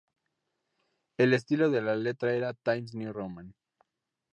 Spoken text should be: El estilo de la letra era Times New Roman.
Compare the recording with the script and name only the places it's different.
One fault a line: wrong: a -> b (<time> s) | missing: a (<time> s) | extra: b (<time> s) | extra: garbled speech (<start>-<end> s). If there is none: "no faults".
no faults